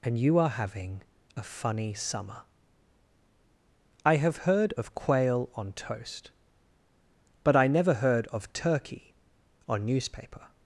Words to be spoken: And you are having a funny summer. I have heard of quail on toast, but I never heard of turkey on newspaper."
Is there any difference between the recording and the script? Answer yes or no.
no